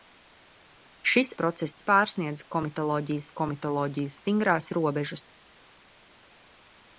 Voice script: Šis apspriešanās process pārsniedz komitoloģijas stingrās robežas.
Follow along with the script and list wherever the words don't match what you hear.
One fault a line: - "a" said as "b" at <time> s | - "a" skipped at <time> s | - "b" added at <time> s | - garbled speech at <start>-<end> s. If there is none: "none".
- "apspriešanās" skipped at 1.3 s
- "komitoloģijas" added at 3.4 s